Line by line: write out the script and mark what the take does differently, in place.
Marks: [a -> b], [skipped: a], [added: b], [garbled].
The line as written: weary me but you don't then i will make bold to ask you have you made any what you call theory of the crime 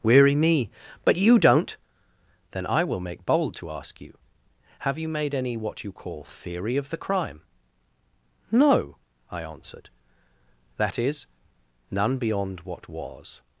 weary me but you don't then i will make bold to ask you have you made any what you call theory of the crime [added: no i answered that is none beyond what was]